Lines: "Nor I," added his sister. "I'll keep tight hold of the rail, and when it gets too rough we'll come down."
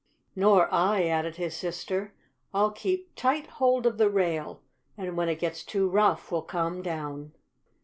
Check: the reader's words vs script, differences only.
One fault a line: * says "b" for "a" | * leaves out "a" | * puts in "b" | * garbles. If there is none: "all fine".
all fine